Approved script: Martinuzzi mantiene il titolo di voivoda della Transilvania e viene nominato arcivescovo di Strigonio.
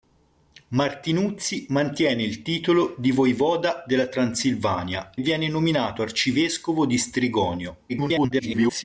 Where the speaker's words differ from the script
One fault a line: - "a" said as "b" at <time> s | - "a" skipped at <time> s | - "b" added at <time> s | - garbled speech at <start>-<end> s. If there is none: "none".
- "e" skipped at 5.1 s
- garbled speech at 7.9-8.8 s